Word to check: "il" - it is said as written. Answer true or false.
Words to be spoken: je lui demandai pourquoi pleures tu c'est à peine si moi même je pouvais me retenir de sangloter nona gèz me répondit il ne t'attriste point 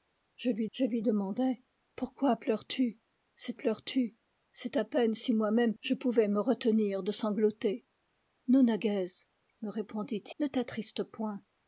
false